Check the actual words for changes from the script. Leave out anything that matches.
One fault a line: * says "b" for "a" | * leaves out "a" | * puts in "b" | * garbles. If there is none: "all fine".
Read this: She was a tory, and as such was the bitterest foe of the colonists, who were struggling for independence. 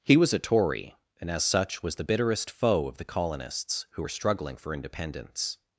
* says "He" for "She"